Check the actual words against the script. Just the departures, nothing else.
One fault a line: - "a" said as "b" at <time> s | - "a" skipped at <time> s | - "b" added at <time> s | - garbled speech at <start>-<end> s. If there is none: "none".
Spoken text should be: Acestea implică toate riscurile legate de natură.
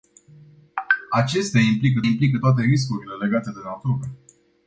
- "implică" added at 2.0 s